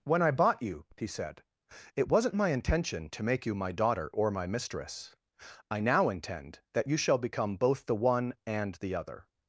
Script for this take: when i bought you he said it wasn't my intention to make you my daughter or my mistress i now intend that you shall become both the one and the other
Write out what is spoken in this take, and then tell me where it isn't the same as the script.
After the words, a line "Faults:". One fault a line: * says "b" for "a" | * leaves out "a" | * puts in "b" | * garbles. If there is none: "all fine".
when i bought you he said it wasn't my intention to make you my daughter or my mistress i now intend that you shall become both the one and the other
Faults:
all fine